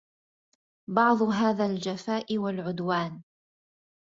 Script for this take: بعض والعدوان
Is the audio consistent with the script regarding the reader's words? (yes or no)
no